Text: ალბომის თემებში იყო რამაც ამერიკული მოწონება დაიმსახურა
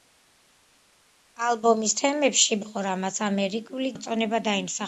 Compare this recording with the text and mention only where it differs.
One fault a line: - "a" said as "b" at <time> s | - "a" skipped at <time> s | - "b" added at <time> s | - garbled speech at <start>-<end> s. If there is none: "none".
none